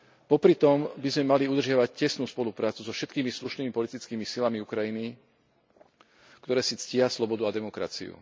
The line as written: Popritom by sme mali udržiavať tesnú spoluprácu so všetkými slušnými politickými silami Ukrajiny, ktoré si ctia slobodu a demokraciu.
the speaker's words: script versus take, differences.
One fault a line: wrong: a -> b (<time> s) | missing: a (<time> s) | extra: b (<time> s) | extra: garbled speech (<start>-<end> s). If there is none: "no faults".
no faults